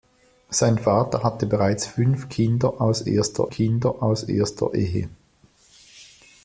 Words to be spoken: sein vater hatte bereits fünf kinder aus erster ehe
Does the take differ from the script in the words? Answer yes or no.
yes